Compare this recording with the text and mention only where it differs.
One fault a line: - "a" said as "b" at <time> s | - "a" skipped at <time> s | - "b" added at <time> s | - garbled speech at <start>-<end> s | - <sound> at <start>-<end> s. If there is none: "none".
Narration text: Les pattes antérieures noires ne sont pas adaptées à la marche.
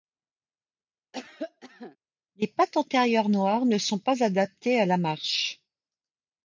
- cough at 1.1-2.0 s